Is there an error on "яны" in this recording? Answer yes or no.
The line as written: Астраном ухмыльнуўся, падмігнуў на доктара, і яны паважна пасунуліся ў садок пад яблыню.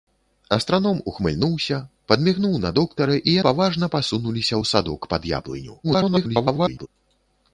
yes